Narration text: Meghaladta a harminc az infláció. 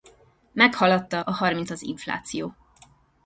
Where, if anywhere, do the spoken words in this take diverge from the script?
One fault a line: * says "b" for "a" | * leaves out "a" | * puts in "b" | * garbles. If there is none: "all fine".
all fine